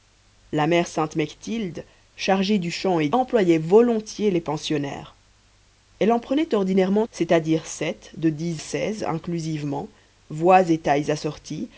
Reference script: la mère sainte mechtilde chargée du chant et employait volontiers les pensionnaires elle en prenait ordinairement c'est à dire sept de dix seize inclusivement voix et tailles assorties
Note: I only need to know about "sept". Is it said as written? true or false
true